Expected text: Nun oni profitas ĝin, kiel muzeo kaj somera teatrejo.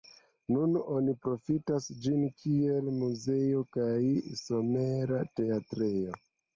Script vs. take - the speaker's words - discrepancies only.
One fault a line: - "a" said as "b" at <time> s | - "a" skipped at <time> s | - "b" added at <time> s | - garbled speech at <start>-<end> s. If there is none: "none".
none